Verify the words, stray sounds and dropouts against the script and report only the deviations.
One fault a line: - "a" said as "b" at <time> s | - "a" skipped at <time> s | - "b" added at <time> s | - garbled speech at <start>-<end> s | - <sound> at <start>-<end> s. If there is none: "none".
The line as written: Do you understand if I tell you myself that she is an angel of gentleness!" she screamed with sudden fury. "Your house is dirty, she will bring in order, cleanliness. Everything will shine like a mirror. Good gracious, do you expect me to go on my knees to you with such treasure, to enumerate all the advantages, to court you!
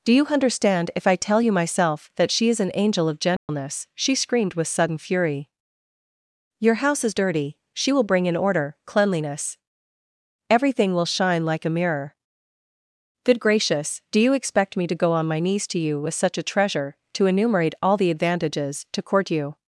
- dropout at 3.4-3.5 s
- "a" added at 16.4 s